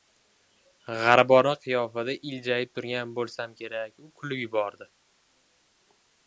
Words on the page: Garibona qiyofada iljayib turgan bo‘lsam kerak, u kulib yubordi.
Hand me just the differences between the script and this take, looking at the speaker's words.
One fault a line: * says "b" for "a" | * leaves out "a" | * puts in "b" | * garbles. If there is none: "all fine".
all fine